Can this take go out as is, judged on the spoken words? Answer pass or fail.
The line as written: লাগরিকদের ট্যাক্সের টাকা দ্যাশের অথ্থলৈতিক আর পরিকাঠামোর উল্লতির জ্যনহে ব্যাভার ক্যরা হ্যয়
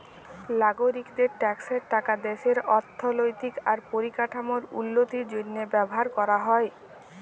pass